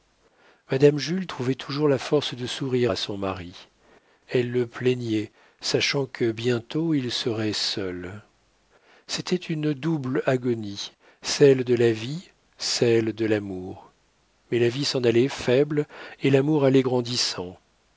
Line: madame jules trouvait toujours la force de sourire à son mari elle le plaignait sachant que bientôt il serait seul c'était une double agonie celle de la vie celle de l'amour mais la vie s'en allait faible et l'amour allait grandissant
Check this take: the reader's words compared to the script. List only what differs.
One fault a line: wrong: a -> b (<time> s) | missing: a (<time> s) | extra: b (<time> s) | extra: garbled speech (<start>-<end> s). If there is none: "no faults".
no faults